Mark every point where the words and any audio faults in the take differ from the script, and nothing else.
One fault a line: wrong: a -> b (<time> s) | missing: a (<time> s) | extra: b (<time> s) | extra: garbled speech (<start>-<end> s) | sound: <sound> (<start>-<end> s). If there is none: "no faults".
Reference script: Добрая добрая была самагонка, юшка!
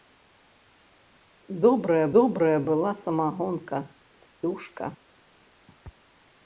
no faults